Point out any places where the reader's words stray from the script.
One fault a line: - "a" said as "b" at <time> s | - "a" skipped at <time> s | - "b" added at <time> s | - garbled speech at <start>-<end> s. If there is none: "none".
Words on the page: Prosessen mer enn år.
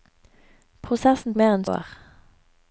none